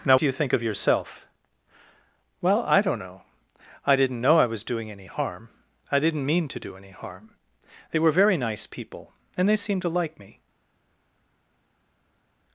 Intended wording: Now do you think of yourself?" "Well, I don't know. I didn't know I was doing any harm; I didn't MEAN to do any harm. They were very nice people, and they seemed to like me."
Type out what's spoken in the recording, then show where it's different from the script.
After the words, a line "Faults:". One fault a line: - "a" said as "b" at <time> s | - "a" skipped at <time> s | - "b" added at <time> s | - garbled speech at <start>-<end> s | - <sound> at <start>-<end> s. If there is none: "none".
Now do you think of yourself?" "Well, I don't know. I didn't know I was doing any harm; I didn't MEAN to do any harm. They were very nice people, and they seemed to like me."
Faults:
none